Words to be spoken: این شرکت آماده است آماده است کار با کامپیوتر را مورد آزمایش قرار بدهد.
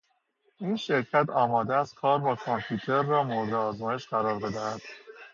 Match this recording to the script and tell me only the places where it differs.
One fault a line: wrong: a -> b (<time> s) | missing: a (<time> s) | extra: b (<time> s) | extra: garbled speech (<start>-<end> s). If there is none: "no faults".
missing: آماده است (2.0 s)